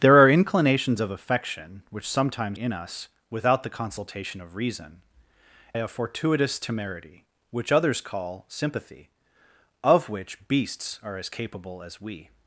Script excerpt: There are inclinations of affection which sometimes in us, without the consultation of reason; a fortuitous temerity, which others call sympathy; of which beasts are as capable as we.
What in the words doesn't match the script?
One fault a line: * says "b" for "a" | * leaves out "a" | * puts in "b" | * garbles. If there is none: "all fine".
all fine